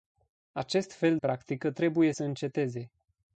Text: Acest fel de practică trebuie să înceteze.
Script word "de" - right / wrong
wrong